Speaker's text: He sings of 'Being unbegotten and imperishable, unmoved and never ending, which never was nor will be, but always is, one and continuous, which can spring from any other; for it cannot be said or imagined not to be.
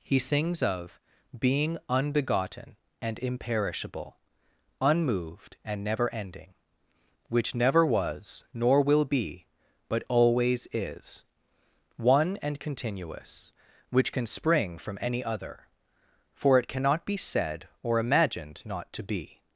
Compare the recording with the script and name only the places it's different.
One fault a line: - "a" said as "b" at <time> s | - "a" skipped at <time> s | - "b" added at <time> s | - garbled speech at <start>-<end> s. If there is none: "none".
none